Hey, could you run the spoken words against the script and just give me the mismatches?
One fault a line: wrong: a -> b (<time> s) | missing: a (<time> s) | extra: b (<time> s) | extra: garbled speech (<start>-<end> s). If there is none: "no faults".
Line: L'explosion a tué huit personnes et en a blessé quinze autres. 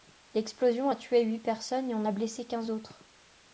no faults